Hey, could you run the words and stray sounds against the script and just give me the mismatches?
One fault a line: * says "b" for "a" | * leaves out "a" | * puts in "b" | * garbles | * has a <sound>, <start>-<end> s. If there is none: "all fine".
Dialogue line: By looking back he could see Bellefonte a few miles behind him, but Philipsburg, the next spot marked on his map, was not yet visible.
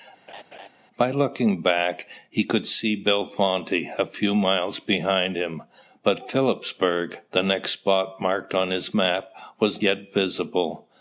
* has a laugh, 0.3-0.7 s
* leaves out "not"